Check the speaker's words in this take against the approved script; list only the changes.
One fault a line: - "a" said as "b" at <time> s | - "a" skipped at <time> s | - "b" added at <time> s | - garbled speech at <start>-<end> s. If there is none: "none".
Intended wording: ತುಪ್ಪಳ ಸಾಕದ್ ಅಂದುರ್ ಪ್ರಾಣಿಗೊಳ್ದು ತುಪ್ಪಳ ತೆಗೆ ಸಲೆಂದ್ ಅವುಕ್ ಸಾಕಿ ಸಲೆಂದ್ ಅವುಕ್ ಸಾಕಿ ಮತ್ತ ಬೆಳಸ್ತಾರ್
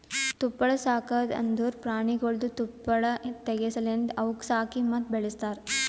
- "ಸಲೆಂದ್ ಅವುಕ್ ಸಾಕಿ" skipped at 4.8 s